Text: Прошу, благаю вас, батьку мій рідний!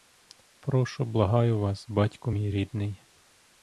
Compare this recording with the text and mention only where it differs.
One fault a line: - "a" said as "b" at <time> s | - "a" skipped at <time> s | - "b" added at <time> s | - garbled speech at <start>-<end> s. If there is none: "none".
none